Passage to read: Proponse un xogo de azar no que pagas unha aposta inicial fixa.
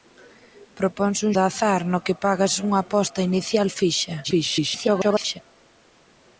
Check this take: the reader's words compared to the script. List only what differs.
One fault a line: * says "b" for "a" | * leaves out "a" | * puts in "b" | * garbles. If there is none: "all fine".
* leaves out "xogo"
* garbles